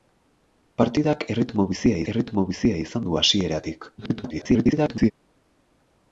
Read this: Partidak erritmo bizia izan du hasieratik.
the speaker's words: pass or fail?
fail